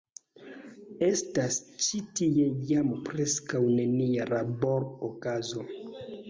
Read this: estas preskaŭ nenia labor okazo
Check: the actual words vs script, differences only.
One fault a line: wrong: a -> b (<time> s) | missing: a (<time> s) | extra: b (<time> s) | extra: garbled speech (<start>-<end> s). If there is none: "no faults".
extra: ĉi tie jam (1.9 s)